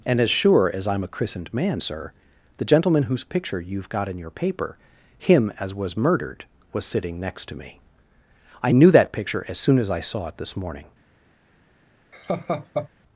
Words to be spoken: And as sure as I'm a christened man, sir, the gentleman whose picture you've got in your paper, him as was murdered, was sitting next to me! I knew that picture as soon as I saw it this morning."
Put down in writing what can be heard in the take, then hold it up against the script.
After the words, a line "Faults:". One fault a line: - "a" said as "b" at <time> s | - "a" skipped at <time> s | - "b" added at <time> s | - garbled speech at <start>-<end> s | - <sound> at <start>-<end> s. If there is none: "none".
And as sure as I'm a christened man, sir, the gentleman whose picture you've got in your paper, him as was murdered, was sitting next to me! I knew that picture as soon as I saw it this morning."
Faults:
- laugh at 12.1-12.9 s